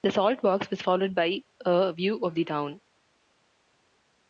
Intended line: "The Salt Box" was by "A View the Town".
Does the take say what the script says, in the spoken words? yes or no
no